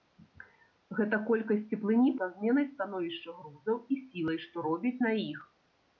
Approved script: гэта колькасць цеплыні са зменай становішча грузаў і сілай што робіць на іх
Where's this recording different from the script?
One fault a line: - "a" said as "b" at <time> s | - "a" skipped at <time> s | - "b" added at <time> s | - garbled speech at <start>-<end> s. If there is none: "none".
none